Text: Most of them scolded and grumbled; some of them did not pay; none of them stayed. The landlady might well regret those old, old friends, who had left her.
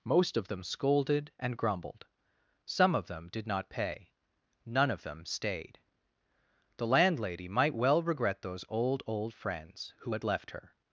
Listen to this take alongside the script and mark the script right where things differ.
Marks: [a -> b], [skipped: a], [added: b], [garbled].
Most of them scolded and grumbled; some of them did not pay; none of them stayed. The landlady might well regret those old, old friends, who had left her.